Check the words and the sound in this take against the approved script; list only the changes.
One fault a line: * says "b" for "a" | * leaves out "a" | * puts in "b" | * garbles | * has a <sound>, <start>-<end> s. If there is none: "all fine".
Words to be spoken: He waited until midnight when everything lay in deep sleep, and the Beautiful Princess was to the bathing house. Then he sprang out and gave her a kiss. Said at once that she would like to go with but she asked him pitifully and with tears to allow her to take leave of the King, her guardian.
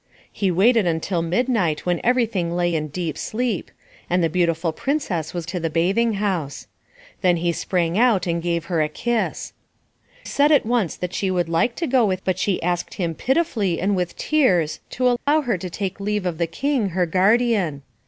* has a dropout, 15.2-15.3 s